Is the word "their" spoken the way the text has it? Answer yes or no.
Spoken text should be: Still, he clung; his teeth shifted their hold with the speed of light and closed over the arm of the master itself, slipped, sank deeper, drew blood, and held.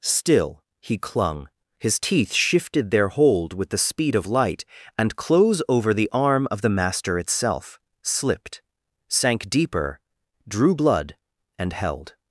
yes